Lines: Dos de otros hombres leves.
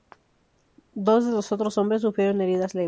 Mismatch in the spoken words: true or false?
true